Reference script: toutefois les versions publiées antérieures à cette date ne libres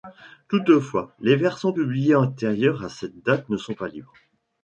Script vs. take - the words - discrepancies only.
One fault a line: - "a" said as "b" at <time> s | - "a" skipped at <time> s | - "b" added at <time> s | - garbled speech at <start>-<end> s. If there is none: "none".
- "sont pas" added at 3.6 s